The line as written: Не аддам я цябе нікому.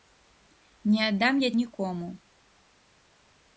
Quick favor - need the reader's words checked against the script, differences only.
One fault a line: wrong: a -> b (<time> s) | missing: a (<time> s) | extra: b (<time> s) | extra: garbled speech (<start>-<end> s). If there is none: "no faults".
missing: цябе (1.5 s)